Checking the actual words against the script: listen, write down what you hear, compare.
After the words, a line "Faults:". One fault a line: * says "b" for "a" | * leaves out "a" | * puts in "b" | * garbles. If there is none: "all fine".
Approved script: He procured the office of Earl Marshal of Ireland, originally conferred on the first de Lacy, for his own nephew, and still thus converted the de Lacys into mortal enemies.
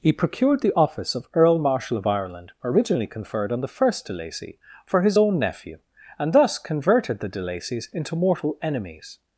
He procured the office of Earl Marshal of Ireland, originally conferred on the first de Lacy, for his own nephew, and thus converted the de Lacys into mortal enemies.
Faults:
* leaves out "still"